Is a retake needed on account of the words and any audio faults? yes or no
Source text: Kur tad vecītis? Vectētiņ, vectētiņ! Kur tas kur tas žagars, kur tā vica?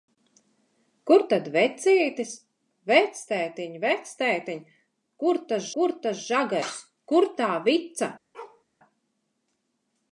yes